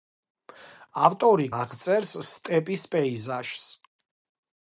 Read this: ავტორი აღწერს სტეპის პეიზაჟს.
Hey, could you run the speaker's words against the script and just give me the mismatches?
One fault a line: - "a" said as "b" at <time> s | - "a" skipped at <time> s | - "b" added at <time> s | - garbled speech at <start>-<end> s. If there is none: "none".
none